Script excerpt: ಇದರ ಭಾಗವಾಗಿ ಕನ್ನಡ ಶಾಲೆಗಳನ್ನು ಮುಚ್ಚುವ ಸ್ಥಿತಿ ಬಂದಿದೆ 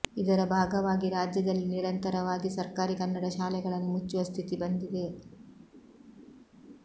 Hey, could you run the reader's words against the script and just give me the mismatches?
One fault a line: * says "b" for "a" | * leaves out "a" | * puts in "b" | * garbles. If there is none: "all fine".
* puts in "ರಾಜ್ಯದಲ್ಲಿ ನಿರಂತರವಾಗಿ ಸರ್ಕಾರಿ"